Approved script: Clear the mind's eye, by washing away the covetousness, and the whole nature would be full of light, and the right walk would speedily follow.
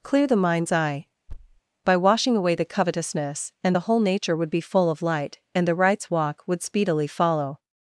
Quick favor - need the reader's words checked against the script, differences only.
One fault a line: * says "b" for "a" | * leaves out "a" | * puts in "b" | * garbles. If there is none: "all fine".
* says "rights" for "right"